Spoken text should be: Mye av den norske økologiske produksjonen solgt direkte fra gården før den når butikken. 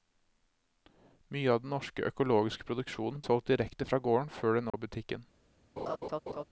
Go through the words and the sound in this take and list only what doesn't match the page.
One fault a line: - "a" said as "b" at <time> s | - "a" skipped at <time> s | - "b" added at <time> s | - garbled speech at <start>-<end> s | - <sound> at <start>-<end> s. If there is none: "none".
- dropout at 4.7-4.7 s
- laugh at 5.8-6.4 s